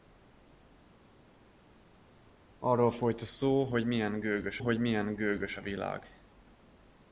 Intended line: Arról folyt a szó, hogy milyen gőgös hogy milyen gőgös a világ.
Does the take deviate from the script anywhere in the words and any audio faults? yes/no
no